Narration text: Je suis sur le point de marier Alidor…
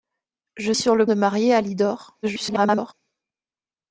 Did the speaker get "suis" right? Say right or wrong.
wrong